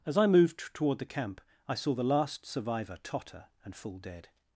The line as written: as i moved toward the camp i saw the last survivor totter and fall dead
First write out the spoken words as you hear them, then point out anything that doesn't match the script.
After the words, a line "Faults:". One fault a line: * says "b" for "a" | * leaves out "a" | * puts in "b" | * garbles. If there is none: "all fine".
as i moved toward the camp i saw the last survivor totter and fall dead
Faults:
all fine